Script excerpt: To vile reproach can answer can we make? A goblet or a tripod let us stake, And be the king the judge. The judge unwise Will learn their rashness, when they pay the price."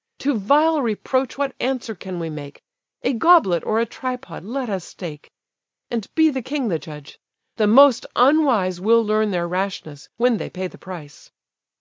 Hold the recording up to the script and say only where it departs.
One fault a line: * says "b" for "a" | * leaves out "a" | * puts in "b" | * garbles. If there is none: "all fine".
* says "what" for "can"
* says "most" for "judge"